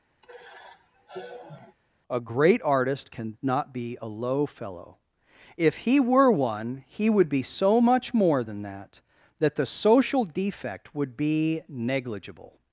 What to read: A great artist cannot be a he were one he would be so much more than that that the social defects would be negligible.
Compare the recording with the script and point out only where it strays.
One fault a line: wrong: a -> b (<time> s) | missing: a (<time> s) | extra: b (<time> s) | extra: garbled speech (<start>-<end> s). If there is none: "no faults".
extra: low fellow if (4.1 s)
wrong: defects -> defect (10.3 s)